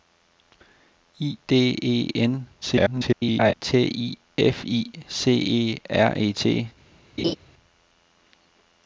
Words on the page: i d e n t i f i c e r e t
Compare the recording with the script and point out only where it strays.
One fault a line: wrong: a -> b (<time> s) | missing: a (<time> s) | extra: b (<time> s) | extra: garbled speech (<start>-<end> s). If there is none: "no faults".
extra: garbled speech (2.6-3.5 s)